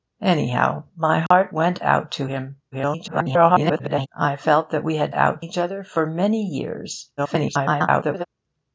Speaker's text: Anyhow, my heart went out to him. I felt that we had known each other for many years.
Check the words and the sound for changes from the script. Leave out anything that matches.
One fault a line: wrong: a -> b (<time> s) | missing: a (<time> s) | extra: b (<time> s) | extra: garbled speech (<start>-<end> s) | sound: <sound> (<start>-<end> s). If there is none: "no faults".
sound: dropout (1.3-1.3 s)
extra: garbled speech (2.7-4.1 s)
wrong: known -> out (5.1 s)
extra: garbled speech (7.2-8.3 s)